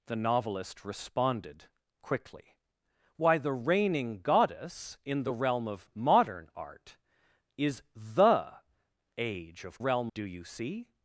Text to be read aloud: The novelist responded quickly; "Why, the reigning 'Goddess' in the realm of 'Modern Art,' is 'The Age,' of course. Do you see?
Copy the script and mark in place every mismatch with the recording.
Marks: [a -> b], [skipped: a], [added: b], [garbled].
The novelist responded quickly; "Why, the reigning 'Goddess' in the realm of 'Modern Art,' is 'The Age,' of [course. -> realm] Do you see?